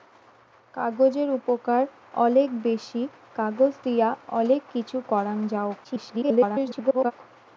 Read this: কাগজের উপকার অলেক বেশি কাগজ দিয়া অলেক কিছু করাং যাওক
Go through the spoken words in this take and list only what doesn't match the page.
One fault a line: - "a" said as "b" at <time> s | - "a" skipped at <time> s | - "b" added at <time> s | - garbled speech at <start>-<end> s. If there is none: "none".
- garbled speech at 5.8-7.1 s